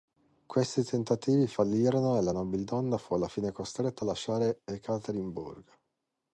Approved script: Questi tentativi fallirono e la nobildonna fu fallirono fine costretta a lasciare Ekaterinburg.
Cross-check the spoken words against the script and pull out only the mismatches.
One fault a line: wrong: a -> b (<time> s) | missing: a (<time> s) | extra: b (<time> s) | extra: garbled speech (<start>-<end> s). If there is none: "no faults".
wrong: fallirono -> alla (3.1 s)